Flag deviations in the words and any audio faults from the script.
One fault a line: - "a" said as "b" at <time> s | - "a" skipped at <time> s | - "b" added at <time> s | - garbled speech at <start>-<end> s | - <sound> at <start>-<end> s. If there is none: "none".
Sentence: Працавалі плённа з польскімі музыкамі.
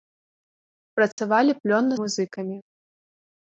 - dropout at 1.1-1.2 s
- "з польскімі" skipped at 1.9 s